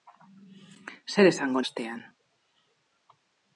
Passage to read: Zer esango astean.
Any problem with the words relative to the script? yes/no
no